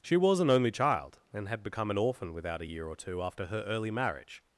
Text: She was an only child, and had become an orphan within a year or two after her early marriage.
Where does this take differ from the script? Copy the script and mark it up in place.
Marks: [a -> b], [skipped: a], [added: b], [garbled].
She was an only child, and had become an orphan [within -> without] a year or two after her early marriage.